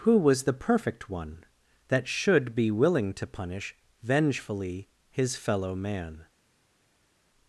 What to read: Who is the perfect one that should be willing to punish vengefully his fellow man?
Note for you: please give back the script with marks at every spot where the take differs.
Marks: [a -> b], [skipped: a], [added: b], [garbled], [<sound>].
Who [is -> was] the perfect one that should be willing to punish vengefully his fellow man?